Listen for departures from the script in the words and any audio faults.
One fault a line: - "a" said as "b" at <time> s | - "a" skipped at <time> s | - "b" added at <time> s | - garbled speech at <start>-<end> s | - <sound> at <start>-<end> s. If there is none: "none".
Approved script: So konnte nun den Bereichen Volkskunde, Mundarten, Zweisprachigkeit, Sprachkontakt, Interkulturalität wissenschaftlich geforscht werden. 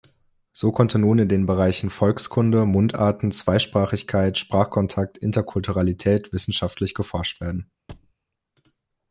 - "in" added at 1.2 s
- thud at 7.9-8.1 s